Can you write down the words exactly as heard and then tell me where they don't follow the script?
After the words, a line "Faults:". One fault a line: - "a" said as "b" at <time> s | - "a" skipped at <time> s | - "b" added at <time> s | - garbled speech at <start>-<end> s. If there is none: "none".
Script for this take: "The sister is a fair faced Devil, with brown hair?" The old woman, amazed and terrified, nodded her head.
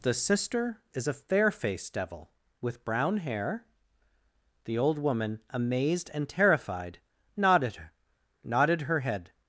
"The sister is a fair faced Devil, with brown hair?" The old woman, amazed and terrified, nodded nodded her head.
Faults:
- "nodded" added at 8.4 s